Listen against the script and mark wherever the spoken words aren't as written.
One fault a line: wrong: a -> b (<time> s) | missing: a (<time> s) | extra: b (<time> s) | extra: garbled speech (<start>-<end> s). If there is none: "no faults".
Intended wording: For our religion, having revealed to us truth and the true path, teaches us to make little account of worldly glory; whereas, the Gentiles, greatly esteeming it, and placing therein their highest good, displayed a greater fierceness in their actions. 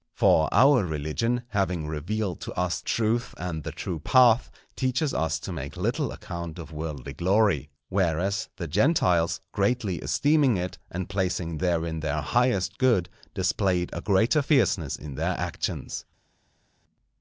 no faults